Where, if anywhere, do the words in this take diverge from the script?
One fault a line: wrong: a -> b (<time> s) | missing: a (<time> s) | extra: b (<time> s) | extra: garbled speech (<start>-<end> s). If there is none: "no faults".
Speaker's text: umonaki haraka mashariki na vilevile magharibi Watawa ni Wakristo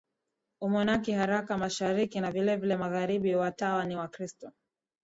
no faults